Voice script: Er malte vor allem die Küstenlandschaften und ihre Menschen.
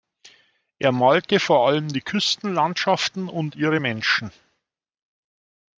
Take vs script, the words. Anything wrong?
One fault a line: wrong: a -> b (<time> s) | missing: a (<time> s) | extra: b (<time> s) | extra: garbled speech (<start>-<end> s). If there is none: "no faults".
no faults